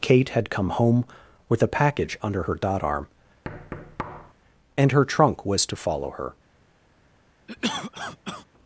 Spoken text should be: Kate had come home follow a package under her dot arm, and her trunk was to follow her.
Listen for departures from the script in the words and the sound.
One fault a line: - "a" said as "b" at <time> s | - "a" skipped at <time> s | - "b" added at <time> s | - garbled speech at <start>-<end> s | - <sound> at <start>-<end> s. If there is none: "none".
- "follow" said as "with" at 1.5 s
- thud at 3.4-4.3 s
- cough at 7.5-8.5 s